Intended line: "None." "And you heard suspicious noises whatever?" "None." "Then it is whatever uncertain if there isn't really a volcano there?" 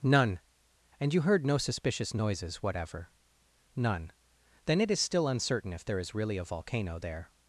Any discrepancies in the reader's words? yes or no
yes